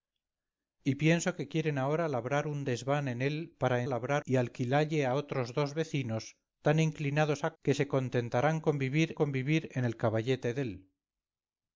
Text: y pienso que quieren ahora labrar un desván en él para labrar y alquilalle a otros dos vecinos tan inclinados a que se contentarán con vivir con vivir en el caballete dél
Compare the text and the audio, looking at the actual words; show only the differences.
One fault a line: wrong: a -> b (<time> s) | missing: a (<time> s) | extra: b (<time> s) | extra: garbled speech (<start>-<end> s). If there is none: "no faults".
no faults